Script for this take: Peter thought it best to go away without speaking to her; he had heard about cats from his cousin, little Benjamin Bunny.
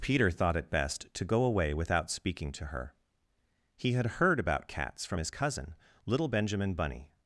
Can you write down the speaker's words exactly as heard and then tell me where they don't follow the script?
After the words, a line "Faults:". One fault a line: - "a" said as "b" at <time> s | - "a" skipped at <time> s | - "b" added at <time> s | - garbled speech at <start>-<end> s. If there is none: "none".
Peter thought it best to go away without speaking to her; he had heard about cats from his cousin, little Benjamin Bunny.
Faults:
none